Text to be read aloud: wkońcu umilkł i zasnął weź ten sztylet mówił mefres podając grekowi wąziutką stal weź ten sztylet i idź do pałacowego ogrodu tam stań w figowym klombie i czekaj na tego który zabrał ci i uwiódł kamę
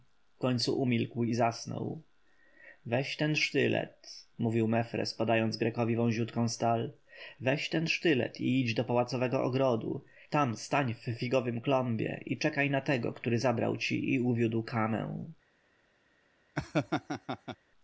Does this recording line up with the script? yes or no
yes